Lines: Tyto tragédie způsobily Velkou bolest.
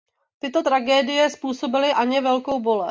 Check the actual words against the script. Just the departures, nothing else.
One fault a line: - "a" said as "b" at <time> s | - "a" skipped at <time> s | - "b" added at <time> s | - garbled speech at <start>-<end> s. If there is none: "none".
- "Anně" added at 1.9 s